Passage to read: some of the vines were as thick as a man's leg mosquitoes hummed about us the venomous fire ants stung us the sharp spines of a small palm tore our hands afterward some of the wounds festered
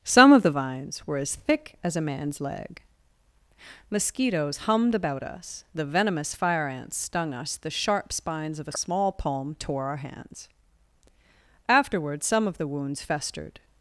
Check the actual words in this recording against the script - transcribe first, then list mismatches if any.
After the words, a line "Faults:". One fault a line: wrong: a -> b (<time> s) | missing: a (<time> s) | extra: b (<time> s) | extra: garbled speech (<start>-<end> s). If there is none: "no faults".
some of the vines were as thick as a man's leg mosquitoes hummed about us the venomous fire ants stung us the sharp spines of a small palm tore our hands afterward some of the wounds festered
Faults:
no faults